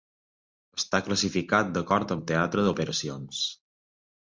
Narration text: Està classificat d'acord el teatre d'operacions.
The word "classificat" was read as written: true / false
true